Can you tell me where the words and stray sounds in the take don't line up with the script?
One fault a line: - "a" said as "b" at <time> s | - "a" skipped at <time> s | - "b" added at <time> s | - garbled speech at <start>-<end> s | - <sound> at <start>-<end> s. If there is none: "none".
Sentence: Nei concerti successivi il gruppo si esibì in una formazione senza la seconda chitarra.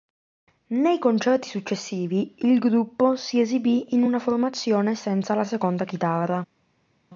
none